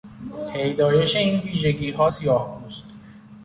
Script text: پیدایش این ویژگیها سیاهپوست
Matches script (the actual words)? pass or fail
pass